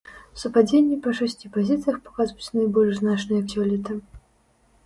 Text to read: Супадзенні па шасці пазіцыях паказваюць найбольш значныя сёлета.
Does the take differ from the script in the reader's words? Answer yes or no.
no